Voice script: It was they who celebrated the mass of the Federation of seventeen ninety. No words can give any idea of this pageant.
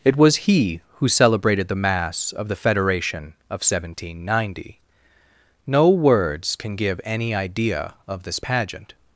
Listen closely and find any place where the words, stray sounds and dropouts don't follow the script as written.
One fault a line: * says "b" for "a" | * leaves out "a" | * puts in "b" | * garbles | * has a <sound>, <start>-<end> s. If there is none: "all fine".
* says "he" for "they"